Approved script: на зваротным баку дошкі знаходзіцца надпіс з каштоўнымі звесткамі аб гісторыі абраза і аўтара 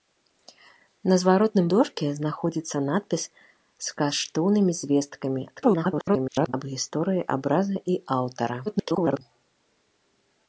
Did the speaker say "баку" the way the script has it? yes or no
no